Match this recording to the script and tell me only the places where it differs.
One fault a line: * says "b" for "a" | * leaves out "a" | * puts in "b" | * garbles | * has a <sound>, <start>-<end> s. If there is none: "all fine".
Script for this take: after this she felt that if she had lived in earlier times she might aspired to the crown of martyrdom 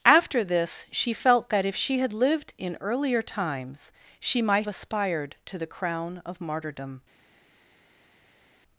all fine